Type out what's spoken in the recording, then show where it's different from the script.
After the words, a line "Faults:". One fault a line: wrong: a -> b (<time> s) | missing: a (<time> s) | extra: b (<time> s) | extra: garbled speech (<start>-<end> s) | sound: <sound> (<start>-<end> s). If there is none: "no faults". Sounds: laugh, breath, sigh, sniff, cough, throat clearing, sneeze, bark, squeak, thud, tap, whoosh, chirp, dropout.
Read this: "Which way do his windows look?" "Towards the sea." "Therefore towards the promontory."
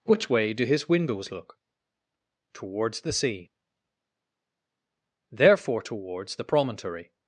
"Which way do his windows look?" "Towards the sea." "Therefore towards the promontory."
Faults:
no faults